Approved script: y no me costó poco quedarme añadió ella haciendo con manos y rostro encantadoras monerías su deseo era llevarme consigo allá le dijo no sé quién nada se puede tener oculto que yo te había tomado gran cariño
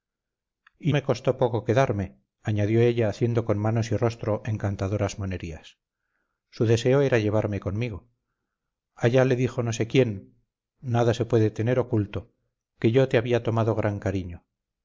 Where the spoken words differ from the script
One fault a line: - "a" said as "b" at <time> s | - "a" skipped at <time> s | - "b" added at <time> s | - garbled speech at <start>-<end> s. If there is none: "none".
- "no" skipped at 0.9 s